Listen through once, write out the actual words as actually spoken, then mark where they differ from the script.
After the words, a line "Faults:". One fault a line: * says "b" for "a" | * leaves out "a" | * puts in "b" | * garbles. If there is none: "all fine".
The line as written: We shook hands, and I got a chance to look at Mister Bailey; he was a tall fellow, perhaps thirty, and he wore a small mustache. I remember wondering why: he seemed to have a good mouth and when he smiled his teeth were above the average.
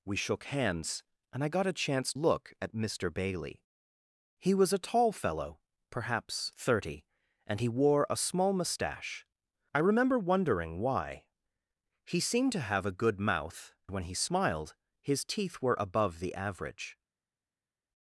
We shook hands, and I got a chance look at Mister Bailey; he was a tall fellow, perhaps thirty, and he wore a small mustache. I remember wondering why: he seemed to have a good mouth when he smiled his teeth were above the average.
Faults:
* leaves out "to"
* leaves out "and"